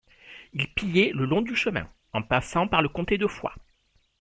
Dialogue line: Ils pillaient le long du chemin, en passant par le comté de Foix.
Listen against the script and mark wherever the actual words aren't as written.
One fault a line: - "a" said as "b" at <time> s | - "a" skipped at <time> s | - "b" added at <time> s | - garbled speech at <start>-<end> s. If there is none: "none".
none